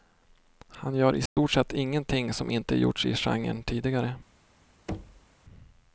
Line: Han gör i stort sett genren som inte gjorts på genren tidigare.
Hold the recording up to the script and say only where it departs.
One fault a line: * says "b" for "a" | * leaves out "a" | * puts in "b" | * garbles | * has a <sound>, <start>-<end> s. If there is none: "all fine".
* has a dropout, 1.3-1.4 s
* says "ingenting" for "genren"
* says "i" for "på"
* has a thud, 4.9-5.3 s